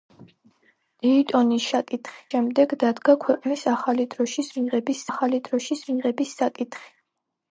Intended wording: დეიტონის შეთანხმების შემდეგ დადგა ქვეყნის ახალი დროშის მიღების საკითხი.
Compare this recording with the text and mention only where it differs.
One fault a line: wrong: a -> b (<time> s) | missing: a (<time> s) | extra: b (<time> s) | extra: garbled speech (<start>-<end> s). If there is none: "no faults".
wrong: შეთანხმების -> საკითხი (1.8 s)
extra: ახალი დროშის მიღების (5.1 s)